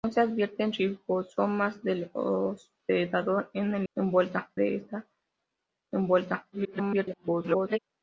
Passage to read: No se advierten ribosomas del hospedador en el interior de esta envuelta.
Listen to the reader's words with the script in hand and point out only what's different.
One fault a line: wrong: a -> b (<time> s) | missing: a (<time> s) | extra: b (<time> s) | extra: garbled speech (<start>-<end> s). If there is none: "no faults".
wrong: interior -> envuelta (3.9 s)
extra: garbled speech (6.5-7.8 s)